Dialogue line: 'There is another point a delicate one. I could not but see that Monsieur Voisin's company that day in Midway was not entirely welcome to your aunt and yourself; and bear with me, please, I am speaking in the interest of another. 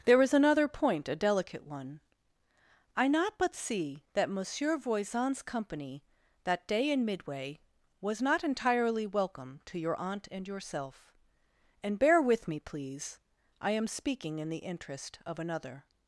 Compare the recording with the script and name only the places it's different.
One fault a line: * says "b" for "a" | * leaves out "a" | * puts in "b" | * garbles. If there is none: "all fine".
* leaves out "could"